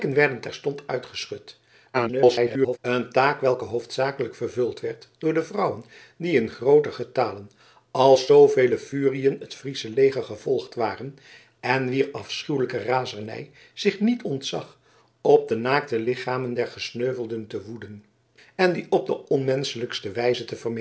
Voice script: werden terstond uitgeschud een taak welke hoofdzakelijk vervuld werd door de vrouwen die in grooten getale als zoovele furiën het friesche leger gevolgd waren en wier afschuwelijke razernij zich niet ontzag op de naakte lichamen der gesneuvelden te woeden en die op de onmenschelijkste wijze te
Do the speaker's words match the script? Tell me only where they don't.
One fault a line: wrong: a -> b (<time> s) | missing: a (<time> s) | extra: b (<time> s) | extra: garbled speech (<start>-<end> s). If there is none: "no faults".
extra: garbled speech (1.9-2.8 s)